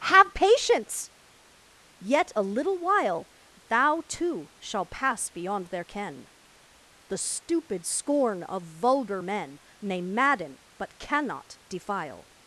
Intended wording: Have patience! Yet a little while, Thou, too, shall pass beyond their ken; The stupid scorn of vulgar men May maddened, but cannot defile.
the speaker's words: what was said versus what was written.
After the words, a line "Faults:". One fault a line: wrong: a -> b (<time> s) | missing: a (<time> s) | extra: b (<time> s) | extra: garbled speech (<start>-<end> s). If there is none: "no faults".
Have patience! Yet a little while, Thou, too, shall pass beyond their ken; The stupid scorn of vulgar men May madden, but cannot defile.
Faults:
wrong: maddened -> madden (10.0 s)